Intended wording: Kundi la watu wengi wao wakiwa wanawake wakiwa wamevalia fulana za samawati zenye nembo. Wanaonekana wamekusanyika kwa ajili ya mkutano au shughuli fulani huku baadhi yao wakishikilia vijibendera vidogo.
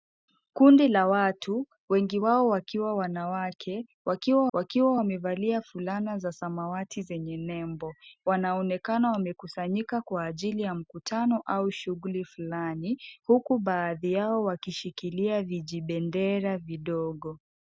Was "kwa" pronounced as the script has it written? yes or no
yes